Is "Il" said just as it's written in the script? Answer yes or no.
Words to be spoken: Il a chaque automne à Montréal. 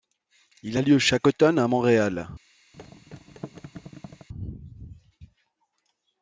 yes